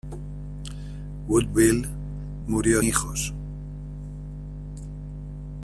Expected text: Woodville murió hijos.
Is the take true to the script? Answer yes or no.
yes